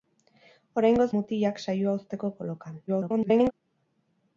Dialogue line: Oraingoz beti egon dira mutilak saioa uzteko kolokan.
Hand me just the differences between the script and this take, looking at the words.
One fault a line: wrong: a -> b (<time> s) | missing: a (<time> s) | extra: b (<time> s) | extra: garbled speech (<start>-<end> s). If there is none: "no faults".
missing: beti egon dira (1.1 s)
extra: garbled speech (2.9-3.5 s)